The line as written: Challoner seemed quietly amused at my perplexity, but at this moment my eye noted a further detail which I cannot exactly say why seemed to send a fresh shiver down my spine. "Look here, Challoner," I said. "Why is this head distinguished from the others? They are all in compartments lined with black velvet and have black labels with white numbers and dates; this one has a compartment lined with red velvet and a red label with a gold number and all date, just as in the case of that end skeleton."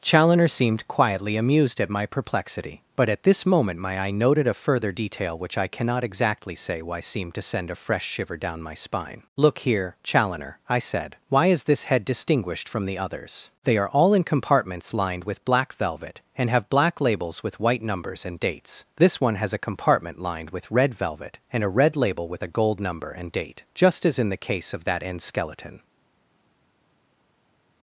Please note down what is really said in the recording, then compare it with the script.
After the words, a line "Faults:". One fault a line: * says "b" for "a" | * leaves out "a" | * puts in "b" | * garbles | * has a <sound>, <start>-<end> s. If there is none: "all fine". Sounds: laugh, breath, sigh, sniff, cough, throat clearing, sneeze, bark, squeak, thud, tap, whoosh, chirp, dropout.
Challoner seemed quietly amused at my perplexity, but at this moment my eye noted a further detail which I cannot exactly say why seemed to send a fresh shiver down my spine. "Look here, Challoner," I said. "Why is this head distinguished from the others? They are all in compartments lined with black velvet and have black labels with white numbers and dates; this one has a compartment lined with red velvet and a red label with a gold number and date, just as in the case of that end skeleton."
Faults:
* leaves out "all"